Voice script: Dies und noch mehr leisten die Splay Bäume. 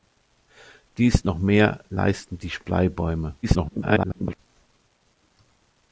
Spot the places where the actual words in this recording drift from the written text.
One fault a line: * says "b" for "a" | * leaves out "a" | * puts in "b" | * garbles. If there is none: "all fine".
* leaves out "und"
* garbles